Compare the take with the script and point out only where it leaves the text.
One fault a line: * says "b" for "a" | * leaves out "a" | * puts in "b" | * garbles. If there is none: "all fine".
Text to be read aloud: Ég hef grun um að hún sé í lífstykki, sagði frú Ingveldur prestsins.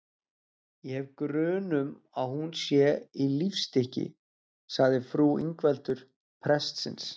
all fine